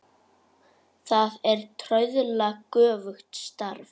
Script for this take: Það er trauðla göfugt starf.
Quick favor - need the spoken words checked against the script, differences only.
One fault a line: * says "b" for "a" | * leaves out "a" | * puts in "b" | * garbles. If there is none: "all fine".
all fine